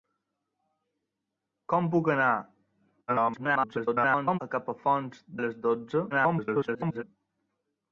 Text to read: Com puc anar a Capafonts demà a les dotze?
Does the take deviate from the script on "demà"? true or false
true